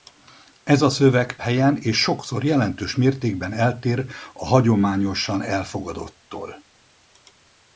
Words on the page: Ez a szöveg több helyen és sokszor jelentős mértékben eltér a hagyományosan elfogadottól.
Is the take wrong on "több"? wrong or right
wrong